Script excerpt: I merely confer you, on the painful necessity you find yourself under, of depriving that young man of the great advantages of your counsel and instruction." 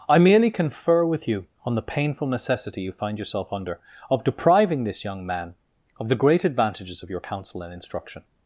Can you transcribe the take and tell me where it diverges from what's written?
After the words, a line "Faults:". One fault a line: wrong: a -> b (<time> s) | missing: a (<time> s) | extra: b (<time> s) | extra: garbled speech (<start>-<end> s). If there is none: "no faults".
I merely confer with you, on the painful necessity you find yourself under, of depriving this young man of the great advantages of your counsel and instruction."
Faults:
extra: with (1.1 s)
wrong: that -> this (4.8 s)